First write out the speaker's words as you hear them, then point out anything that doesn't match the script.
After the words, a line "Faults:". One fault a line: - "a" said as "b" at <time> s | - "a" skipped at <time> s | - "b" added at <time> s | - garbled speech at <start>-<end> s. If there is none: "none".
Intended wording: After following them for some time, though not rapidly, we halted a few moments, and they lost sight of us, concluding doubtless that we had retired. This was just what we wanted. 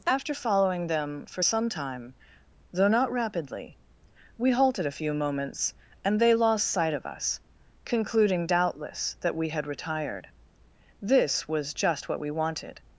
After following them for some time, though not rapidly, we halted a few moments, and they lost sight of us, concluding doubtless that we had retired. This was just what we wanted.
Faults:
none